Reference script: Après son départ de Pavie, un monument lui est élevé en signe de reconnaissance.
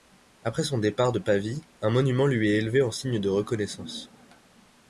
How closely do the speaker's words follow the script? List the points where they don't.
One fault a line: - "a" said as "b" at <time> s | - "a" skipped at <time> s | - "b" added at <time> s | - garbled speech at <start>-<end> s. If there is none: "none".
none